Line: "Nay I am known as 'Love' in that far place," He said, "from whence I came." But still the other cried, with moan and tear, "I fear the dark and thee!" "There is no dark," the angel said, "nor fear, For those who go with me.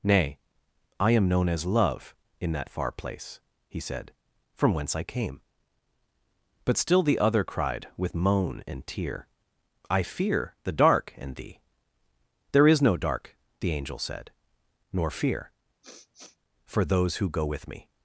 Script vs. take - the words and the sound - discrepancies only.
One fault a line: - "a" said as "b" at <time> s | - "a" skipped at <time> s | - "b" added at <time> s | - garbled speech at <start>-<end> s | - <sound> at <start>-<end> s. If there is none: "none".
- sniff at 15.8-16.4 s